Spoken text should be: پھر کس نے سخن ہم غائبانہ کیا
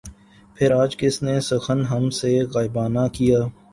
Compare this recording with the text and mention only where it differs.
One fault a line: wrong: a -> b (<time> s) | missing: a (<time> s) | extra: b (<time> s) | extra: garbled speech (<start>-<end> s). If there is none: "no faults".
extra: آج (0.7 s)
extra: سے (2.2 s)